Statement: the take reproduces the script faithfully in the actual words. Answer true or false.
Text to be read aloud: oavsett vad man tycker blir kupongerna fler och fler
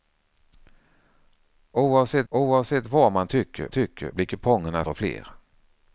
false